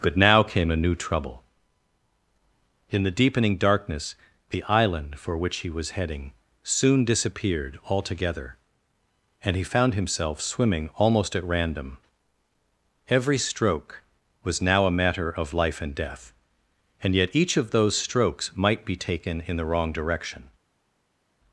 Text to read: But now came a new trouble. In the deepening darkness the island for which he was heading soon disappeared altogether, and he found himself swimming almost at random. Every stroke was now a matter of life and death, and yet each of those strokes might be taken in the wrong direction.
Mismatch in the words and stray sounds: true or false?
false